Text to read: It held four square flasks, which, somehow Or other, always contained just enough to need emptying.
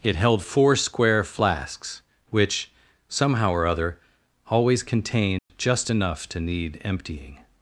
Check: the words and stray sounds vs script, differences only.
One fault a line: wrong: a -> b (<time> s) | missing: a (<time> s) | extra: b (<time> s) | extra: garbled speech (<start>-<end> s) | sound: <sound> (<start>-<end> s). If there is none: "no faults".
sound: dropout (5.4-5.5 s)